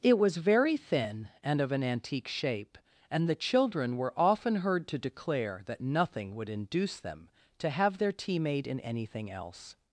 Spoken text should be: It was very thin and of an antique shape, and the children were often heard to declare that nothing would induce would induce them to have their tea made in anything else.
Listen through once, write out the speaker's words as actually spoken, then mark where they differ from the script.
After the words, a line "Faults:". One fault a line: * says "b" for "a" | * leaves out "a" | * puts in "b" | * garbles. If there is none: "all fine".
It was very thin and of an antique shape, and the children were often heard to declare that nothing would induce them to have their tea made in anything else.
Faults:
* leaves out "would induce"